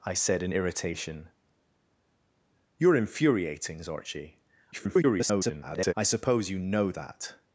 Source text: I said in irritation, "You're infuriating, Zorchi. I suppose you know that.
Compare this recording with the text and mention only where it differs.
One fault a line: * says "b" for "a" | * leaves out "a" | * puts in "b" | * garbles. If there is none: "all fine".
* garbles